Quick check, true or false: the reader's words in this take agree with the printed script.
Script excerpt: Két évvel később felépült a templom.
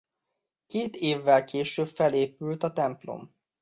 true